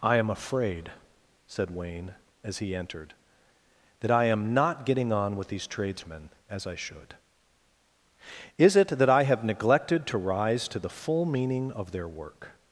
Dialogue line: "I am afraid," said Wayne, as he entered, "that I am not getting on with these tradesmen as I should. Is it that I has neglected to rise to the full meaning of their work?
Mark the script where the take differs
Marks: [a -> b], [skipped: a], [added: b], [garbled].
"I am afraid," said Wayne, as he entered, "that I am not getting on with these tradesmen as I should. Is it that I [has -> have] neglected to rise to the full meaning of their work?